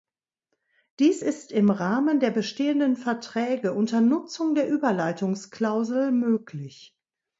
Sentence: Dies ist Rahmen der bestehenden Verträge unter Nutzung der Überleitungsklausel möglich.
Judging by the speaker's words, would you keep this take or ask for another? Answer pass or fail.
fail